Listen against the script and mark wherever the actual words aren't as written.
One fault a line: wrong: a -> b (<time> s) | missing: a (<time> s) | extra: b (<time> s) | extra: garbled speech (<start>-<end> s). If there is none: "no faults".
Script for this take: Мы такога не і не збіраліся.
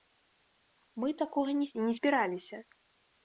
no faults